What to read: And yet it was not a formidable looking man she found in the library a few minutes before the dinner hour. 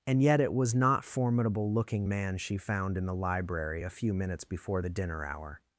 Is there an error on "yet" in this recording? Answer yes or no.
no